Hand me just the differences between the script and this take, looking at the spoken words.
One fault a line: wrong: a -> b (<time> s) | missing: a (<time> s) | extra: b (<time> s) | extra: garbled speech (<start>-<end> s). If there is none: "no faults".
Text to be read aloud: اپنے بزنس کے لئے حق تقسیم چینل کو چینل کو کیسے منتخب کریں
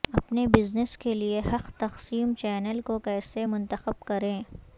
missing: چینل کو (3.0 s)